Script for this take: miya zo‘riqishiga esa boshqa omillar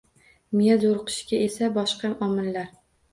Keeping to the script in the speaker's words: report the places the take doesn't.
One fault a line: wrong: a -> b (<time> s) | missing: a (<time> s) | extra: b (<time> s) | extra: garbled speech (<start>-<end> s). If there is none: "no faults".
no faults